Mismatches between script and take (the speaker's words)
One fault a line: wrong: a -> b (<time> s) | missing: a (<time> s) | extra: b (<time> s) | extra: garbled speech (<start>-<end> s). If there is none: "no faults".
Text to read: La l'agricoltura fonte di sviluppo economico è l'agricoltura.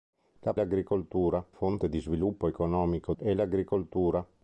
no faults